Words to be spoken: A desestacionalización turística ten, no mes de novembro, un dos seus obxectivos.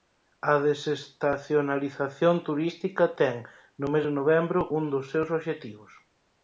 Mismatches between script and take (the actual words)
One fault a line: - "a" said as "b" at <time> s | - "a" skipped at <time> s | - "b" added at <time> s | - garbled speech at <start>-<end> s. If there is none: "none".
none